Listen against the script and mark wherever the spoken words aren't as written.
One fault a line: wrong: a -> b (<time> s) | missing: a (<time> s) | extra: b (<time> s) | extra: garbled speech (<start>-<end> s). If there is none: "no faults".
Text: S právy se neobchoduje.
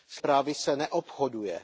no faults